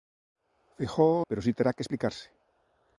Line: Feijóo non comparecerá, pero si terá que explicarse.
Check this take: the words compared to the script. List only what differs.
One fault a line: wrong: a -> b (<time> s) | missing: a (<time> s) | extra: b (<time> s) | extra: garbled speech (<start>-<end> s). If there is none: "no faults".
missing: non comparecerá (1.2 s)